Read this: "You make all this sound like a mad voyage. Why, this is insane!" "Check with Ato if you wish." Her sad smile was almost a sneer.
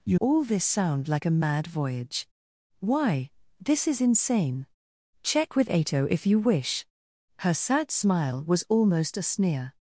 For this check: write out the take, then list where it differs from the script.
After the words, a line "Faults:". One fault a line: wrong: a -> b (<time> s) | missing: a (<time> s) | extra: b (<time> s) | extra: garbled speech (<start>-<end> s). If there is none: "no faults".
"You all this sound like a mad voyage. Why, this is insane!" "Check with Ato if you wish." Her sad smile was almost a sneer.
Faults:
missing: make (0.2 s)